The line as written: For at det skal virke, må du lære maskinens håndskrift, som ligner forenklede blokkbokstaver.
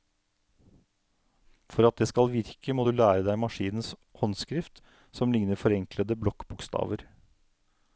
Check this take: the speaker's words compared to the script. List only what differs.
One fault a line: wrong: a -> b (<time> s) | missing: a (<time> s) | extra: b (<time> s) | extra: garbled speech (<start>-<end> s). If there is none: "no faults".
extra: deg (3.3 s)